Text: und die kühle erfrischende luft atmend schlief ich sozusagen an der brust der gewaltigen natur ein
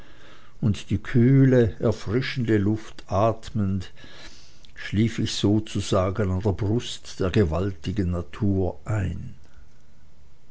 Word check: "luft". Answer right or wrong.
right